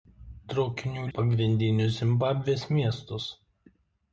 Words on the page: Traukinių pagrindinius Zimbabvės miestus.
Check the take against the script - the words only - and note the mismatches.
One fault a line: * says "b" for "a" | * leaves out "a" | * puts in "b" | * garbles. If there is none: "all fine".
all fine